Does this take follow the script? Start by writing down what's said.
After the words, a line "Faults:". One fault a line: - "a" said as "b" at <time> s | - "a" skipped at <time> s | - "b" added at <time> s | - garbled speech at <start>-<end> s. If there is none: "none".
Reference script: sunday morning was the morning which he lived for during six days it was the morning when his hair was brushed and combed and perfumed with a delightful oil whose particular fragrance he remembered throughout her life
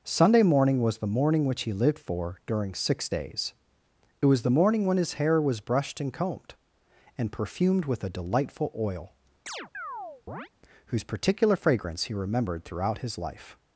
sunday morning was the morning which he lived for during six days it was the morning when his hair was brushed and combed and perfumed with a delightful oil whose particular fragrance he remembered throughout his life
Faults:
- "her" said as "his" at 13.0 s